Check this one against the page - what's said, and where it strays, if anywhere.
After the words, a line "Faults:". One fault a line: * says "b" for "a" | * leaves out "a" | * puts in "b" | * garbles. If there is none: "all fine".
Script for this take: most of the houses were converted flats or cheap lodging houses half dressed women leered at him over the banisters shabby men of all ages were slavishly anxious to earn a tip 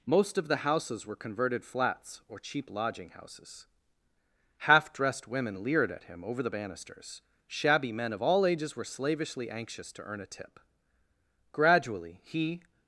most of the houses were converted flats or cheap lodging houses half dressed women leered at him over the banisters shabby men of all ages were slavishly anxious to earn a tip gradually he
Faults:
* puts in "gradually he"